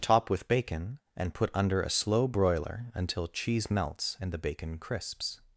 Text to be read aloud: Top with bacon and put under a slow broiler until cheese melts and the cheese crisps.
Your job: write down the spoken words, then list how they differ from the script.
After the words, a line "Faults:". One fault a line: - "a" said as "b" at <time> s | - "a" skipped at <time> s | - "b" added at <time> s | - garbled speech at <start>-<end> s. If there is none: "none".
Top with bacon and put under a slow broiler until cheese melts and the bacon crisps.
Faults:
- "cheese" said as "bacon" at 4.4 s